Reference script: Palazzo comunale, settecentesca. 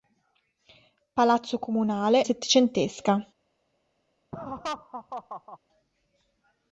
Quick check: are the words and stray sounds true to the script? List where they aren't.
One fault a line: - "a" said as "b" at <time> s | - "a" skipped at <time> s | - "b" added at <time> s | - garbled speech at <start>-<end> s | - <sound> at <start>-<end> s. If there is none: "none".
- laugh at 4.3-5.6 s